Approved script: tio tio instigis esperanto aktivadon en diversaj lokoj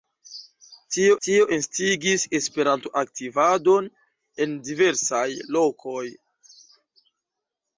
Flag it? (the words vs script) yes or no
no